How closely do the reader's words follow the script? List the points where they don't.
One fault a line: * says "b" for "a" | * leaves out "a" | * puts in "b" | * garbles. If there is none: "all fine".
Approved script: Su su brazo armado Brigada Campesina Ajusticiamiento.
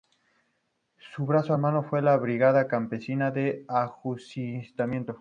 * leaves out "su"
* puts in "fue la"
* puts in "de"